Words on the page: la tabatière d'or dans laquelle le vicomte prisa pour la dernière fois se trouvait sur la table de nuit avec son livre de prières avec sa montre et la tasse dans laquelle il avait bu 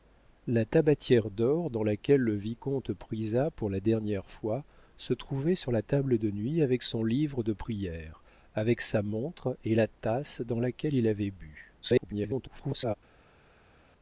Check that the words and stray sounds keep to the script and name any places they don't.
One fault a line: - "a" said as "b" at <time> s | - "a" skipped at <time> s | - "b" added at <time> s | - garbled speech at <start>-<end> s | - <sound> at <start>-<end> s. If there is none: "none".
- garbled speech at 11.8-12.9 s